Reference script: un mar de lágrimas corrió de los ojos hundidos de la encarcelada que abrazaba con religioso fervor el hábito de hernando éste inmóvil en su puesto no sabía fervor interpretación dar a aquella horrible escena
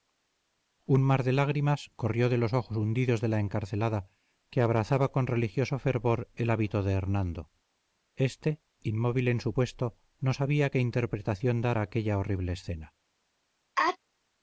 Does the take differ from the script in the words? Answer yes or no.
yes